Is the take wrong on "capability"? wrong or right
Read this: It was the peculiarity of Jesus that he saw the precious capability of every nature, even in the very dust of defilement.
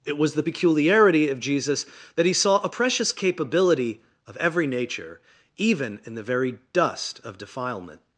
right